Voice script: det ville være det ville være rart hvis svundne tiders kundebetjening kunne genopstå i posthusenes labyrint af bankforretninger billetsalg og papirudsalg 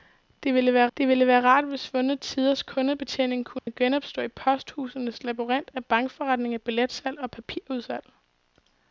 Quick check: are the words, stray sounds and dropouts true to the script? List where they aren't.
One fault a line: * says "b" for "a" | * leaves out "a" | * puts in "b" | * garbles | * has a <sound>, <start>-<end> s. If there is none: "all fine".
* has a dropout, 3.6-3.7 s